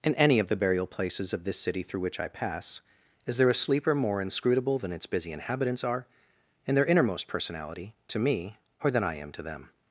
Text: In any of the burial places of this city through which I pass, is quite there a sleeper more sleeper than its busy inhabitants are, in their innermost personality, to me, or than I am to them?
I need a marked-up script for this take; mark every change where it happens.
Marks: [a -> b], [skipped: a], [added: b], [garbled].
In any of the burial places of this city through which I pass, is [skipped: quite] there a sleeper more [sleeper -> inscrutable] than its busy inhabitants are, in their innermost personality, to me, or than I am to them?